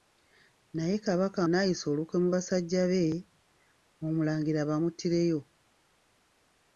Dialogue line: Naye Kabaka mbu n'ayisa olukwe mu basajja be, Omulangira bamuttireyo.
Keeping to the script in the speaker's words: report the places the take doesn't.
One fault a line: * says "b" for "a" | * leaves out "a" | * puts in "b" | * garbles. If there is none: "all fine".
* leaves out "mbu"